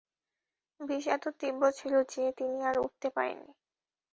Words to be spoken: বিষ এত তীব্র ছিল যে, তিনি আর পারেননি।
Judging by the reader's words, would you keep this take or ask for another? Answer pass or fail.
fail